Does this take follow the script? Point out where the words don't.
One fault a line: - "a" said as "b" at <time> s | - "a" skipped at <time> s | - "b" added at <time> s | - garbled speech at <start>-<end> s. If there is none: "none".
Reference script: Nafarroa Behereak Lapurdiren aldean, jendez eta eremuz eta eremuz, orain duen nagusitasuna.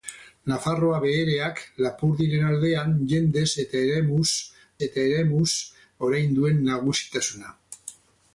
none